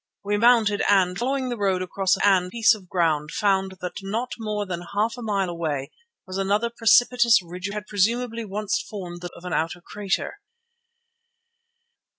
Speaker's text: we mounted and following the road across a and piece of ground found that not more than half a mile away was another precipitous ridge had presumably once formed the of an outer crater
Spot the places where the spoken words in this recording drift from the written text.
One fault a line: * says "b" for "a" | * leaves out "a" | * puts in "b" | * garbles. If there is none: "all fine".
all fine